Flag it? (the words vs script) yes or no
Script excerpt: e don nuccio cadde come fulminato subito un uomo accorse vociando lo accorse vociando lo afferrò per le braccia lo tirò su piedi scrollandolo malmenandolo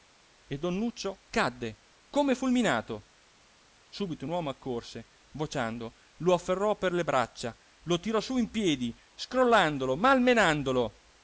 yes